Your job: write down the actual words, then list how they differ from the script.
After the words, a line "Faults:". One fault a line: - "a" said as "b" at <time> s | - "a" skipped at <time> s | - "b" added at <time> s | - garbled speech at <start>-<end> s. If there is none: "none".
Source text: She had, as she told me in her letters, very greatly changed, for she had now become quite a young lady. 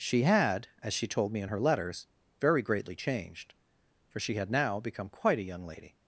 She had, as she told me in her letters, very greatly changed, for she had now become quite a young lady.
Faults:
none